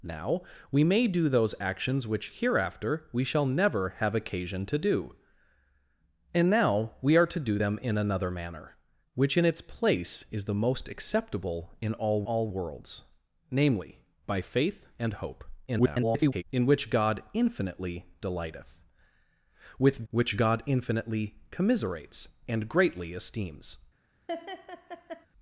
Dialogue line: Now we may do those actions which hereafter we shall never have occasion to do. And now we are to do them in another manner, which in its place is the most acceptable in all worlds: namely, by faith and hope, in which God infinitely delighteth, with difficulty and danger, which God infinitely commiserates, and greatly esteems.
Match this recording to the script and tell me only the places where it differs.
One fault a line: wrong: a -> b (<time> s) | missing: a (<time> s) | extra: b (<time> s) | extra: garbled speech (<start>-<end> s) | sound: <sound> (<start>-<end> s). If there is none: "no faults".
extra: all (12.2 s)
extra: garbled speech (15.7-16.4 s)
missing: difficulty and danger (20.0 s)
sound: laugh (24.3-25.3 s)